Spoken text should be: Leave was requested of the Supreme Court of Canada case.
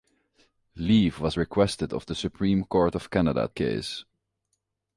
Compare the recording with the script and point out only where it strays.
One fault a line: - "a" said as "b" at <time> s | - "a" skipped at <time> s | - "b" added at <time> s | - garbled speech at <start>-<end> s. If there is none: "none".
none